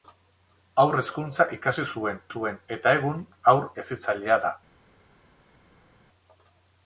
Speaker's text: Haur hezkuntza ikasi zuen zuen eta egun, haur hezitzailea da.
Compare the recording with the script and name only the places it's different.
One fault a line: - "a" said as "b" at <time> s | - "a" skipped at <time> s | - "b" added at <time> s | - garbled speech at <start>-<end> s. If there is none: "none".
none